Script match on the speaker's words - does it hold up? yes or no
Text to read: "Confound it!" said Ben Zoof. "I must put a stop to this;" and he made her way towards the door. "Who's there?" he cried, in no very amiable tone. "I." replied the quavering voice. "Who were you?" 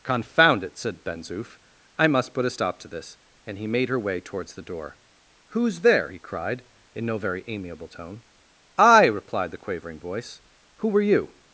yes